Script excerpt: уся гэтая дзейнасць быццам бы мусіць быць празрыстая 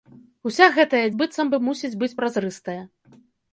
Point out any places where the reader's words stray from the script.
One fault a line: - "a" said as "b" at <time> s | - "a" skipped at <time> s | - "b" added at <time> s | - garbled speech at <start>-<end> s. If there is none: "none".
- "дзейнасць" skipped at 1.0 s